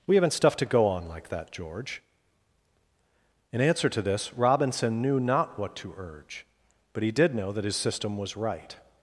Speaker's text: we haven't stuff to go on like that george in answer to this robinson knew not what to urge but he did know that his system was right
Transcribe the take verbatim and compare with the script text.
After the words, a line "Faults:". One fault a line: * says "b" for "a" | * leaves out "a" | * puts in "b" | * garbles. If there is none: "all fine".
we haven't stuff to go on like that george in answer to this robinson knew not what to urge but he did know that his system was right
Faults:
all fine